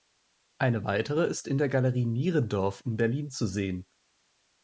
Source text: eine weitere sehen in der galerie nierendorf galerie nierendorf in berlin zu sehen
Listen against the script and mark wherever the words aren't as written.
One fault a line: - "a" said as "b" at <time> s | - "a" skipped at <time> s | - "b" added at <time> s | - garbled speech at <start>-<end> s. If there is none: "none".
- "sehen" said as "ist" at 1.3 s
- "galerie nierendorf" skipped at 2.8 s